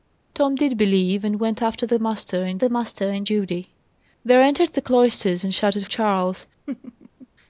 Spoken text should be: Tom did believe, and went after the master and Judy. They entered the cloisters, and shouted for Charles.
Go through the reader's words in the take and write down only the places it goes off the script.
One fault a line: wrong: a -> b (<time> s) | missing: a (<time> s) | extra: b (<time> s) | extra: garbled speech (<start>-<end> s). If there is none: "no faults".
extra: the master and (2.6 s)
missing: for (5.9 s)